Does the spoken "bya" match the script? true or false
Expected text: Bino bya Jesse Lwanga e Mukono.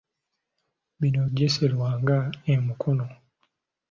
false